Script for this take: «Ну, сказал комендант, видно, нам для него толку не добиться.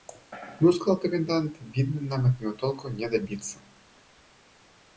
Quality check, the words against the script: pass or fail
fail